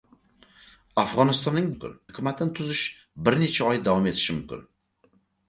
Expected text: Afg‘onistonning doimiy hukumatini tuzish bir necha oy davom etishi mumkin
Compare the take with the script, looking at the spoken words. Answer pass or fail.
fail